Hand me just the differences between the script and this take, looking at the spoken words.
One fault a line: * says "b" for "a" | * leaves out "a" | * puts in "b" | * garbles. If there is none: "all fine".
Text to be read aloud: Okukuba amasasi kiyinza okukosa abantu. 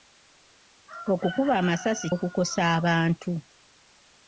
* leaves out "kiyinza"